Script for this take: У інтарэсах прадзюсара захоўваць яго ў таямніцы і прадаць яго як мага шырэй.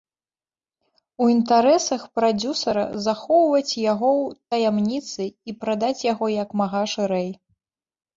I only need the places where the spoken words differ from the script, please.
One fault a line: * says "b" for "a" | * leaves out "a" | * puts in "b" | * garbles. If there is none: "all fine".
all fine